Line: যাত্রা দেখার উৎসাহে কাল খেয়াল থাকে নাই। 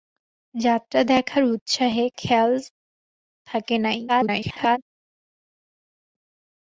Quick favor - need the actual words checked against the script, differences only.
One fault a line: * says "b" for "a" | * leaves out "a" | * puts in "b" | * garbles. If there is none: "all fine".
* leaves out "কাল"
* garbles